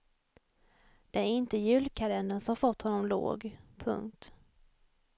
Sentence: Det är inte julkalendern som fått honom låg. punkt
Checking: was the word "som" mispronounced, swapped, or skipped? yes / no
no